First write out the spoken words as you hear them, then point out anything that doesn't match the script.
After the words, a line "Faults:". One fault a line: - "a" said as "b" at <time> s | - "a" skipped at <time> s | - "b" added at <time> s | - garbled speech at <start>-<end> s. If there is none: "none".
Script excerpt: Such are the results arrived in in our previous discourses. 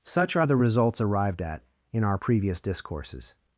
Such are the results arrived at in our previous discourses.
Faults:
- "in" said as "at" at 1.4 s